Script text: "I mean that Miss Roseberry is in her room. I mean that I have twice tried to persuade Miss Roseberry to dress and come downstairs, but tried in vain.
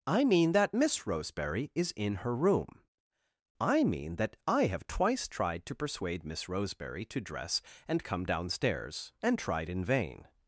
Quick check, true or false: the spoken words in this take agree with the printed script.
false